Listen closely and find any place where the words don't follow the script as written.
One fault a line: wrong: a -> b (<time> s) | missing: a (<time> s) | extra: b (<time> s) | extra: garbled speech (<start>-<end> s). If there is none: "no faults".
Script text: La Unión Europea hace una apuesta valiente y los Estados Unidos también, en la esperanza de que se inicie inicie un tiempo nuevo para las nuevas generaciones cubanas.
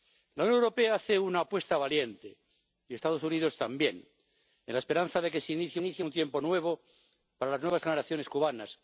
no faults